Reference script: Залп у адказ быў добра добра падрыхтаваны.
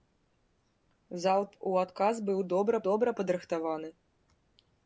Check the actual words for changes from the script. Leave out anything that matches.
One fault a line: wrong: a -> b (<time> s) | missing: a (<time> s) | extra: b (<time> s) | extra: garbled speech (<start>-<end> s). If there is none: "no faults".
no faults